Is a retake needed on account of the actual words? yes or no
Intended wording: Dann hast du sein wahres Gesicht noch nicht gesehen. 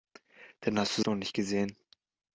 yes